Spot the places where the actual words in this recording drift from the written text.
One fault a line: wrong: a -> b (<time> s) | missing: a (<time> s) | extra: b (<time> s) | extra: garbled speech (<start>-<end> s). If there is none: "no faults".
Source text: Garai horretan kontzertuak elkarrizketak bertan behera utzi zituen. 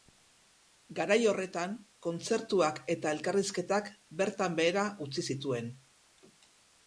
extra: eta (3.0 s)